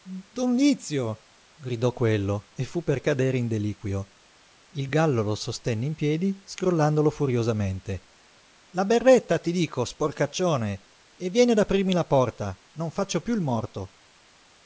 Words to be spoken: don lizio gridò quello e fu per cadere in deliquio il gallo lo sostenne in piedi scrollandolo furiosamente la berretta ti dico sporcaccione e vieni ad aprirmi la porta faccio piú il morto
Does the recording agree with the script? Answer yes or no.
no